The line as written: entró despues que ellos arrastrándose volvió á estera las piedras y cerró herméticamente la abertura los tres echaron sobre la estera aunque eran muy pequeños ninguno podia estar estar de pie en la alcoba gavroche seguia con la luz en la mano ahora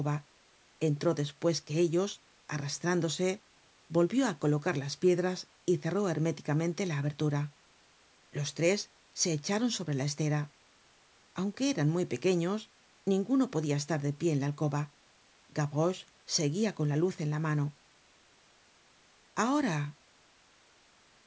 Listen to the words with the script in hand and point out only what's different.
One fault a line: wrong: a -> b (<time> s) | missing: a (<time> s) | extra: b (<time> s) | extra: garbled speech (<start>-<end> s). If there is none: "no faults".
wrong: estera -> colocar (4.4 s)
extra: se (9.1 s)
missing: estar (14.0 s)